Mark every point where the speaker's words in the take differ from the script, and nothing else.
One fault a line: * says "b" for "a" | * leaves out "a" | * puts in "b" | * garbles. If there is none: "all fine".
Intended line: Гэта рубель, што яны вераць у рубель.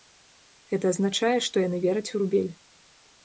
* says "азначае" for "рубель"